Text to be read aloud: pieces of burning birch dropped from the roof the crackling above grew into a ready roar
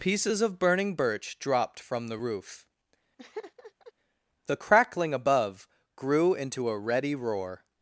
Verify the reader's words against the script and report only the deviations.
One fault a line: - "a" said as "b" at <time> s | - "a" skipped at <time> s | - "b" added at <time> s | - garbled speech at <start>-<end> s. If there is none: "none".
none